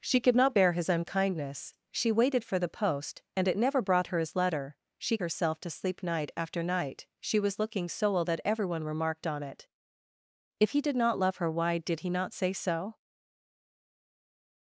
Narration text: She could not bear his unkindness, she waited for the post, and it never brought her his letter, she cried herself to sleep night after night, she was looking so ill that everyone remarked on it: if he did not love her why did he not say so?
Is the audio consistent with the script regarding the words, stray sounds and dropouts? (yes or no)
no